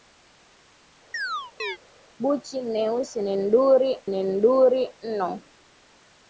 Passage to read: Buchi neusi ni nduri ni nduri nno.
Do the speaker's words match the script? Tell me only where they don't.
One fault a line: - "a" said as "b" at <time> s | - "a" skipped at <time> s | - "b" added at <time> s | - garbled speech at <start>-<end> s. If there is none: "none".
none